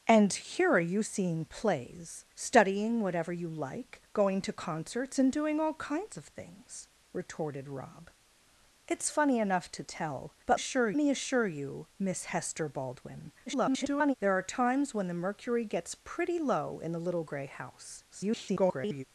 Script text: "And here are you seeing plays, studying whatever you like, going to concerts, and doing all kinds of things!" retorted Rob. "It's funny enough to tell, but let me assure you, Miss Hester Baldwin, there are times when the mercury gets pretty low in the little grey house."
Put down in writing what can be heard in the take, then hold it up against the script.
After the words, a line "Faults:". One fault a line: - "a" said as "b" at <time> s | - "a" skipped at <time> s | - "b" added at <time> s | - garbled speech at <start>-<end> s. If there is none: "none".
"And here are you seeing plays, studying whatever you like, going to concerts, and doing all kinds of things!" retorted Rob. "It's funny enough to tell, but assure me assure you, Miss Hester Baldwin, [garbled] there are times when the mercury gets pretty low in the little grey house." [garbled]
Faults:
- "let" said as "assure" at 10.5 s
- garbled speech at 13.5-14.1 s
- garbled speech at 18.1-19.0 s